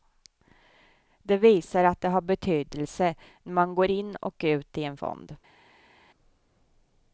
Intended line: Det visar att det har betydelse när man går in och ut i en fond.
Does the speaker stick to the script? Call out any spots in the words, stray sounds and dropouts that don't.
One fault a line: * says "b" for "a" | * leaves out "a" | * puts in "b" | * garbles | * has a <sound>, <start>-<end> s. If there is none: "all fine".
all fine